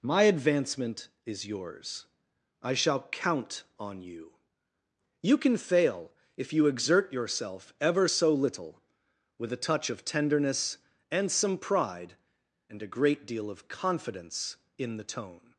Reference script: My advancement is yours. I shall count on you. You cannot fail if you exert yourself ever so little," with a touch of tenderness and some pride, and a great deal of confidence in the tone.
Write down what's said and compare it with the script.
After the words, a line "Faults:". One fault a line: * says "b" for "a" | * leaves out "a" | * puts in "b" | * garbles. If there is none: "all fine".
My advancement is yours. I shall count on you. You can fail if you exert yourself ever so little," with a touch of tenderness and some pride, and a great deal of confidence in the tone.
Faults:
* says "can" for "cannot"